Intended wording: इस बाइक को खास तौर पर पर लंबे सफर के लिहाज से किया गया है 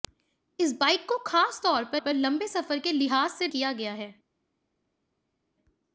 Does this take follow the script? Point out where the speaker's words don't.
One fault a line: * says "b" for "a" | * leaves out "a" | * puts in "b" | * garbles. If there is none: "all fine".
all fine